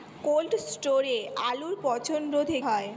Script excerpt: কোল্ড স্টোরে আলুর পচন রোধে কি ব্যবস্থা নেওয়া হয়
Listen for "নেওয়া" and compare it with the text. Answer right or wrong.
wrong